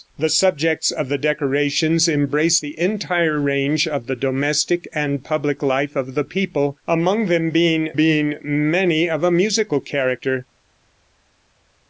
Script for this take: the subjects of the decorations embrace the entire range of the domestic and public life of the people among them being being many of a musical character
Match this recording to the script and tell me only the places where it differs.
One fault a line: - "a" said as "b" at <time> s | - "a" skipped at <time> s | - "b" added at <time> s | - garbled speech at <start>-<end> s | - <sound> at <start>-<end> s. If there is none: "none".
none